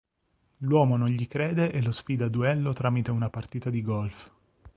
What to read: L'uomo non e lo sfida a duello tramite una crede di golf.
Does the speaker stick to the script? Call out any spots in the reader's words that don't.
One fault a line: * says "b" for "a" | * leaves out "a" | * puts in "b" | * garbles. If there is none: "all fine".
* puts in "gli crede"
* says "partita" for "crede"